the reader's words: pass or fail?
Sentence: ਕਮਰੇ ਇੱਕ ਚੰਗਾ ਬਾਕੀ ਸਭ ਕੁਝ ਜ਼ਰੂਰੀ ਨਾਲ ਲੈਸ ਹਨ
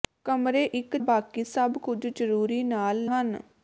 fail